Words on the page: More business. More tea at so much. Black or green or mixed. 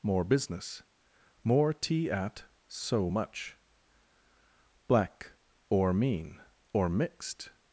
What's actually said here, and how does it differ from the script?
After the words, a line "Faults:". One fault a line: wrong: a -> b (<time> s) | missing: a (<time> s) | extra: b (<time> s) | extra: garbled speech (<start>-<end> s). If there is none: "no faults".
More business. More tea at so much. Black or mean or mixed.
Faults:
wrong: green -> mean (5.9 s)